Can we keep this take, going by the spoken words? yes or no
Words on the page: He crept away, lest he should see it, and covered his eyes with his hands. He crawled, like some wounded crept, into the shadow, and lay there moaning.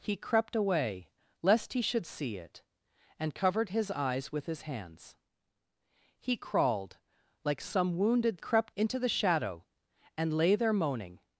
yes